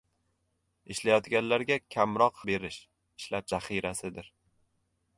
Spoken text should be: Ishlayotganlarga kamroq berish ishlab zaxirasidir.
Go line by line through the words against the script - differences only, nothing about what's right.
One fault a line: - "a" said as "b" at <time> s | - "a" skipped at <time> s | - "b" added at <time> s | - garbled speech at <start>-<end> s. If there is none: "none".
none